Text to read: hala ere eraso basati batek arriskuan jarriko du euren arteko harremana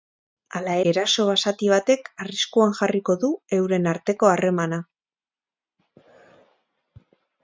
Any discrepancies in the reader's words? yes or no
yes